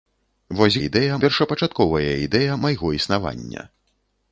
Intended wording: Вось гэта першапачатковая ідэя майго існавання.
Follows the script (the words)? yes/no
no